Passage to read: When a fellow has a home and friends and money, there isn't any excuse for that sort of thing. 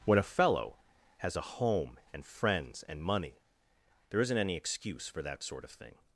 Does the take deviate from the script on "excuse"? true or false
false